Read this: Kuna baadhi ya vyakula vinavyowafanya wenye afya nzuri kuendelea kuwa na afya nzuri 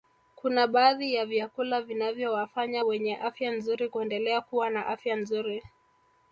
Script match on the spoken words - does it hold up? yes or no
yes